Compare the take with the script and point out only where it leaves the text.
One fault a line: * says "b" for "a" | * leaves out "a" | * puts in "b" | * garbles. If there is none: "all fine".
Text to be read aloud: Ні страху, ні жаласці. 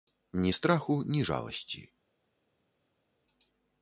all fine